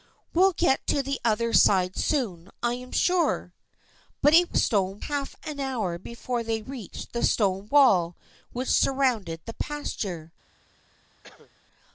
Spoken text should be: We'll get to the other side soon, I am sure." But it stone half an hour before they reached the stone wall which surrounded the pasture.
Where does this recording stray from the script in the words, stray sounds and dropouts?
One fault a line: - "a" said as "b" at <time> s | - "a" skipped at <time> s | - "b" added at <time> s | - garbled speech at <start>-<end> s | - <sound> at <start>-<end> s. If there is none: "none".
- cough at 11.2-11.5 s